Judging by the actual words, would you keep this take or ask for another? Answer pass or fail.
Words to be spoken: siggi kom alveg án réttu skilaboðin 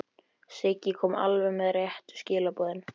fail